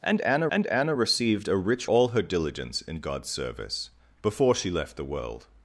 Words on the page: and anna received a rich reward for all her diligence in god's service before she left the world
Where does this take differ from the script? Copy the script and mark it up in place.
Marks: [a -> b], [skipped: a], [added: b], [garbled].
and anna [added: and anna] received a rich [skipped: reward for] all her diligence in god's service before she left the world